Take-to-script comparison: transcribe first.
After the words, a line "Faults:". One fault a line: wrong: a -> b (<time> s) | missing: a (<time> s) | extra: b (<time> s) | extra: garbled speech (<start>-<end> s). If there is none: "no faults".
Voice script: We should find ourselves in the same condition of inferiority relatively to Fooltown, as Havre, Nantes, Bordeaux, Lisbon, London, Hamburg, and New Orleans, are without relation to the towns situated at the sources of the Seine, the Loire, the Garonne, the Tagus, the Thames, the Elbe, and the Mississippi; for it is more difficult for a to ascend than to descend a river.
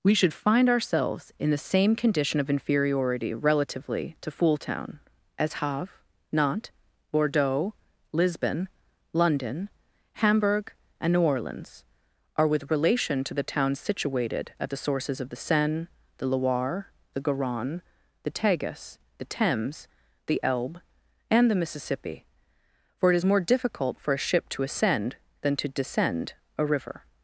We should find ourselves in the same condition of inferiority relatively to Fooltown, as Havre, Nantes, Bordeaux, Lisbon, London, Hamburg, and New Orleans, are with relation to the towns situated at the sources of the Seine, the Loire, the Garonne, the Tagus, the Thames, the Elbe, and the Mississippi; for it is more difficult for a ship to ascend than to descend a river.
Faults:
wrong: without -> with (12.5 s)
extra: ship (24.2 s)